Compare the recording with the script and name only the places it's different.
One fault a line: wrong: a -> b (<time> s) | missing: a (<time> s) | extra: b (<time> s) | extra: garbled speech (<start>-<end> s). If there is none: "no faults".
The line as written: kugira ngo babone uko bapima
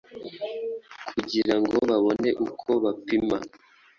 no faults